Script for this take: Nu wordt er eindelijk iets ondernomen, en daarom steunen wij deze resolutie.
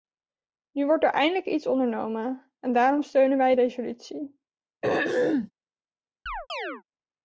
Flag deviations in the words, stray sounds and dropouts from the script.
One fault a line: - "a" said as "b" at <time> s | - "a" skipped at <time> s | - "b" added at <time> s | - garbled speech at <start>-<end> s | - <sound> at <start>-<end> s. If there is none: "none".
- "deze" skipped at 3.5 s
- throat clearing at 4.8-5.5 s
- chirp at 6.3-6.8 s